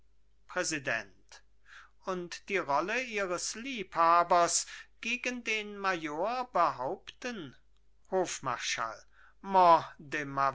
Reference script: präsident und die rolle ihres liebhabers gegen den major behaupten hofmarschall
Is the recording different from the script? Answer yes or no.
no